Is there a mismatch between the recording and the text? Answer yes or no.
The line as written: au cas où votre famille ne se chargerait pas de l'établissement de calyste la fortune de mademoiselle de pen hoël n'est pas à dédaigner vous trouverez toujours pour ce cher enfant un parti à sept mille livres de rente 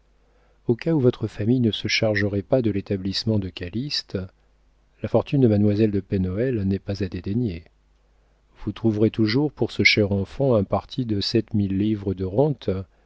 yes